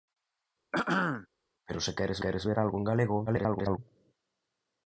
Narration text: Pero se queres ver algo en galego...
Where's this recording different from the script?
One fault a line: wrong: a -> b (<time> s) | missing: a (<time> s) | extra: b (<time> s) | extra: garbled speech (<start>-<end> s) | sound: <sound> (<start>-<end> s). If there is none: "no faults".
sound: throat clearing (0.7-1.3 s)
extra: queres (2.2 s)
extra: garbled speech (3.3-3.8 s)